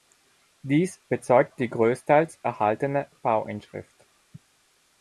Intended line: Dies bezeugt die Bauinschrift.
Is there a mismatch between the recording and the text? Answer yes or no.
yes